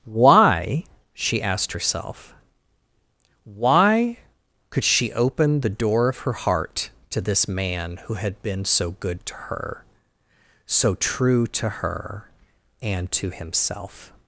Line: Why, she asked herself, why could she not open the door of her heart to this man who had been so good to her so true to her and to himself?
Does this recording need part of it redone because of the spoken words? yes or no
yes